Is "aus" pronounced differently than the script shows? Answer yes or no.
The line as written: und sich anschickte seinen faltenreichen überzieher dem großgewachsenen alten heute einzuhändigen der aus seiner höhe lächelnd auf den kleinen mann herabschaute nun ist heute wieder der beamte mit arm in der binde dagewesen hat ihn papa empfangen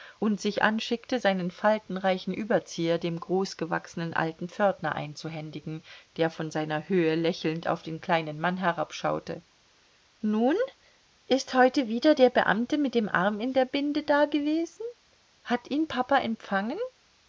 yes